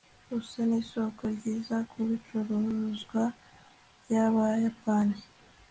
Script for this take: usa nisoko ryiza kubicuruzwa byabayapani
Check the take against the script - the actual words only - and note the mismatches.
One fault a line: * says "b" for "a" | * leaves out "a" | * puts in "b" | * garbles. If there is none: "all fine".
all fine